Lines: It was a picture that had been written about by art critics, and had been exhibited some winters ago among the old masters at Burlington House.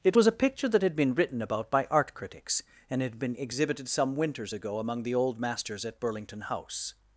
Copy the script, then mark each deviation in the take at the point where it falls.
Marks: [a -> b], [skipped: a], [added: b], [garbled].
It was a picture that had been written about by art critics, and had been exhibited some winters ago among the old masters at Burlington House.